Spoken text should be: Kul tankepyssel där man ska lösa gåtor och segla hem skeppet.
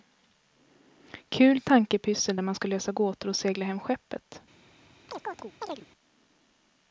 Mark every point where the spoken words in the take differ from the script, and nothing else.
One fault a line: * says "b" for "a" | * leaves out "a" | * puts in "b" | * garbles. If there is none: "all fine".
all fine